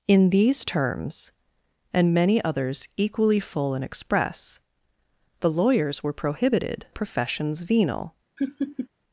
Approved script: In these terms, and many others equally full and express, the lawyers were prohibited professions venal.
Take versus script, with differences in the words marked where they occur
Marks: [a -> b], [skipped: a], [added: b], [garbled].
In these terms, and many others equally full and express, the lawyers were prohibited professions venal.